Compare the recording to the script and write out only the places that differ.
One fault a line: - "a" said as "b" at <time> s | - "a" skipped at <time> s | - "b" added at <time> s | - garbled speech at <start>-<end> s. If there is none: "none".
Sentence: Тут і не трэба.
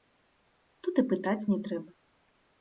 - "пытаць" added at 1.1 s